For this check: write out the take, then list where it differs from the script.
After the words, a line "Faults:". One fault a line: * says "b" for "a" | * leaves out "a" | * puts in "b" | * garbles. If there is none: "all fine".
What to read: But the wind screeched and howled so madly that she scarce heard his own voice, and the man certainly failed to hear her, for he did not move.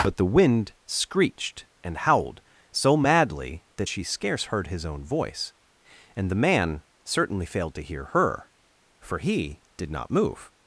But the wind screeched and howled so madly that she scarce heard his own voice, and the man certainly failed to hear her, for he did not move.
Faults:
all fine